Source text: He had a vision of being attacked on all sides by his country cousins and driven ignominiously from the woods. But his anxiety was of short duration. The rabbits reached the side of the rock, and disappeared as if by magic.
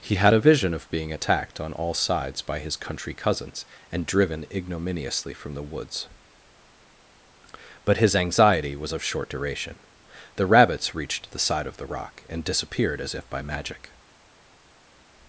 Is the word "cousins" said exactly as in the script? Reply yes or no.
yes